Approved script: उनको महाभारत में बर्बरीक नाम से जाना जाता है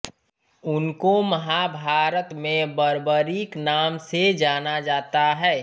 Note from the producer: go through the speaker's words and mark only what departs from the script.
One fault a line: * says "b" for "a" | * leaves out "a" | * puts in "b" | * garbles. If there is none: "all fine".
all fine